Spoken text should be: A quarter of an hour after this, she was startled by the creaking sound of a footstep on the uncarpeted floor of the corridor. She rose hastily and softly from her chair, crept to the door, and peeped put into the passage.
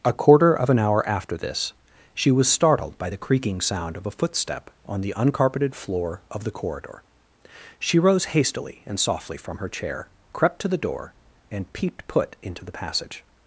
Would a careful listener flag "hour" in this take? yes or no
no